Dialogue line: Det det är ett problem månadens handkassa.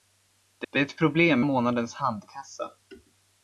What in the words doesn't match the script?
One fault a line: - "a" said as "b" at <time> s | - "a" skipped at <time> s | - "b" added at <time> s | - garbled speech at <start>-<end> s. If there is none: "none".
none